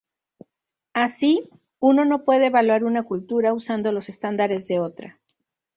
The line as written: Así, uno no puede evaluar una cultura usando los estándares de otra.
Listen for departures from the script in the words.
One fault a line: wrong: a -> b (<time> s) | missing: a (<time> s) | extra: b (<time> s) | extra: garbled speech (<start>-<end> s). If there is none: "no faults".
no faults